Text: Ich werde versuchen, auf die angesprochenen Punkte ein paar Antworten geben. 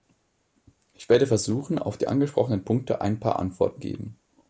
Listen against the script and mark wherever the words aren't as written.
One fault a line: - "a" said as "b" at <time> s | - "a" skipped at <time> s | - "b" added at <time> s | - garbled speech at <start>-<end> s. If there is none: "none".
none